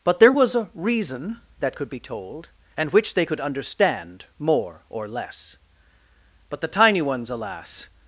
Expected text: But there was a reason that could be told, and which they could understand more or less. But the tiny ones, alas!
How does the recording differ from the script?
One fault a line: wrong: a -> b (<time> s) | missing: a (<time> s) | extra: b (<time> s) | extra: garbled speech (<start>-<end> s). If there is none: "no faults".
no faults